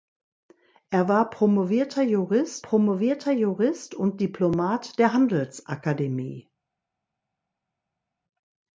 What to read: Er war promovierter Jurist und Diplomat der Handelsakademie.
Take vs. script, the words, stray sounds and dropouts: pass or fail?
fail